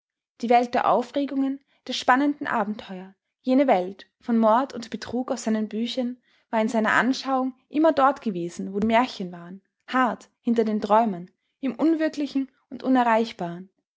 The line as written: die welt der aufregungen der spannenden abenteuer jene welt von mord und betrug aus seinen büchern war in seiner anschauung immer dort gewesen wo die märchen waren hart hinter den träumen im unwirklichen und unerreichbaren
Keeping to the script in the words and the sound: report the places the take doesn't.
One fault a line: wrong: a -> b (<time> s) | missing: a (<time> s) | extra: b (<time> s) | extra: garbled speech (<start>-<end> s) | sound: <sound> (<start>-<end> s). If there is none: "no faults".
no faults